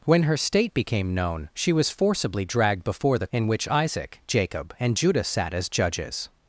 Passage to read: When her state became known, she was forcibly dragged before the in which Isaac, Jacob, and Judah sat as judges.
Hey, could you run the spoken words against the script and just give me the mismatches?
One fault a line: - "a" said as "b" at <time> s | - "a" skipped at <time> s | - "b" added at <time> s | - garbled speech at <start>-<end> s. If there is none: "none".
none